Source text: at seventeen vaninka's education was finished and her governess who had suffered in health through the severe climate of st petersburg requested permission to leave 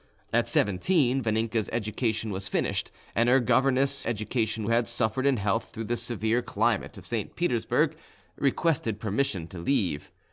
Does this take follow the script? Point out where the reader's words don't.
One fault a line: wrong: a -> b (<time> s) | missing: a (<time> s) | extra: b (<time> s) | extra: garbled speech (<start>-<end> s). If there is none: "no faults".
wrong: who -> education (4.0 s)